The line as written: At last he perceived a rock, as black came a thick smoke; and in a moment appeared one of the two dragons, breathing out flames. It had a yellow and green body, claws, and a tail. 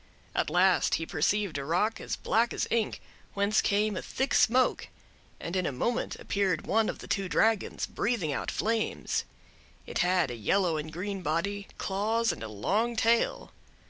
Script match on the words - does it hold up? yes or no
no